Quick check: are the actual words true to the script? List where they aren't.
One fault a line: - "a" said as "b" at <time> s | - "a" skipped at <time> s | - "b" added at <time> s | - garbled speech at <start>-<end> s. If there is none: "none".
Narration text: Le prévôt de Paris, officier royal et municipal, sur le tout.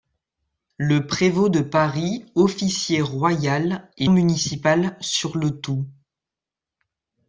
none